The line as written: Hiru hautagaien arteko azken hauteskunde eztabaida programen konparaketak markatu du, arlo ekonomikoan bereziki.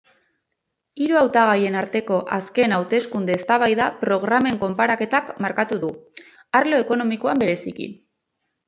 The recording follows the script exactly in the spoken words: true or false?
true